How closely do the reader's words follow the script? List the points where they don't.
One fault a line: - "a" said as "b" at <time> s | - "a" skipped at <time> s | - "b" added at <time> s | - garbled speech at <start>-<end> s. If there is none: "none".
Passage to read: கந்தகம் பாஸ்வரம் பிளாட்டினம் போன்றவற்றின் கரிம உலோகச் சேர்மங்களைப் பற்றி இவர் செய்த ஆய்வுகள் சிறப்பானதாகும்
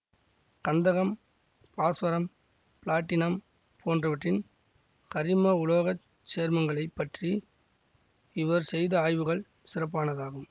none